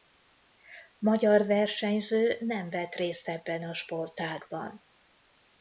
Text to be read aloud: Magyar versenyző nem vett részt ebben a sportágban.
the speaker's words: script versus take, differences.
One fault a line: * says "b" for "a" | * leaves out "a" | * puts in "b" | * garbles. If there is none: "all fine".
all fine